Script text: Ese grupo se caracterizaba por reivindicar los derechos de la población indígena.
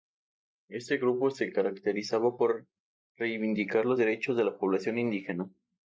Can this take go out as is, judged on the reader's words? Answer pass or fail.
fail